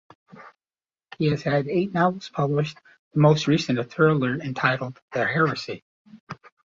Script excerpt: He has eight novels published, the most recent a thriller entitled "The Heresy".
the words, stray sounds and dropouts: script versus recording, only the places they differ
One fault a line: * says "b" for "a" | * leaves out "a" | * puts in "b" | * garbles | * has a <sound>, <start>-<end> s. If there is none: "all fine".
* puts in "had"